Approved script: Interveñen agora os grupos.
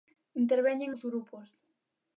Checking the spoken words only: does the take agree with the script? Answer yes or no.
no